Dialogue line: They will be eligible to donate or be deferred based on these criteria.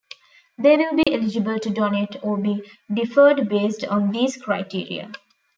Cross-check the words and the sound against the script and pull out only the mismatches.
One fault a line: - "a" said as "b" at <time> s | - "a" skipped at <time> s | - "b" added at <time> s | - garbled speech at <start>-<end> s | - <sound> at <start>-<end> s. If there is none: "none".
- dropout at 1.0-1.1 s